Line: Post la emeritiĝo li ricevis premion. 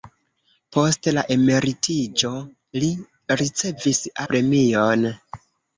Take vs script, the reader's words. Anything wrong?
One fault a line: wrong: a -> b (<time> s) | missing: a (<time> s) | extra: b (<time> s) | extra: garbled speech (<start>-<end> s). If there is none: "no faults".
no faults